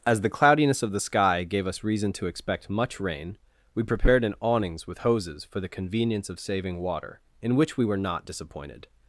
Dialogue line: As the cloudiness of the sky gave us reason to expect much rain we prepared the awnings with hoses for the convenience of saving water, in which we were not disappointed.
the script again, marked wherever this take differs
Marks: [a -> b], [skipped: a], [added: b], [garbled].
As the cloudiness of the sky gave us reason to expect much rain we prepared [the -> an] awnings with hoses for the convenience of saving water, in which we were not disappointed.